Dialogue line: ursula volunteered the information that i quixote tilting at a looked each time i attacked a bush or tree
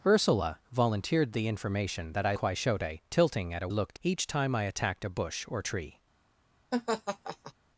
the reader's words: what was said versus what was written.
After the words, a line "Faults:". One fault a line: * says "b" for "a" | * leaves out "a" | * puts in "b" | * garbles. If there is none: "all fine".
ursula volunteered the information that i quixote tilting at a looked each time i attacked a bush or tree
Faults:
all fine